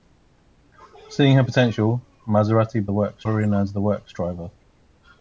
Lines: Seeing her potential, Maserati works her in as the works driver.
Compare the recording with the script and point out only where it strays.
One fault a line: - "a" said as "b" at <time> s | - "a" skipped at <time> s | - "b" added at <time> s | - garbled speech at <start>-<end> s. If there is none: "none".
none